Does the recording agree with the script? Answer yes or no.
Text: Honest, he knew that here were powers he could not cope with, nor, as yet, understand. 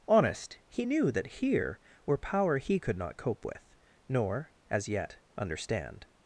no